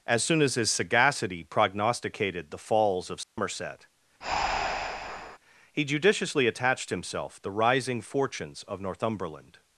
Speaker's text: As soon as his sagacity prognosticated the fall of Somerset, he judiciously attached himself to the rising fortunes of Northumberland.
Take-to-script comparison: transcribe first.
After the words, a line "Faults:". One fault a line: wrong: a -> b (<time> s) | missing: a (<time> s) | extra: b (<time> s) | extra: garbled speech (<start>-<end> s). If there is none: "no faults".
As soon as his sagacity prognosticated the falls of Somerset, he judiciously attached himself the rising fortunes of Northumberland.
Faults:
wrong: fall -> falls (2.6 s)
missing: to (7.4 s)